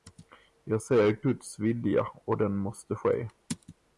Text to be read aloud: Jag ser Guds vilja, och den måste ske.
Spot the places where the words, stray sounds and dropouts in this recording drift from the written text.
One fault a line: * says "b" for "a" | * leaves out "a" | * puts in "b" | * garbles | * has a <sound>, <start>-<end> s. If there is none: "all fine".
all fine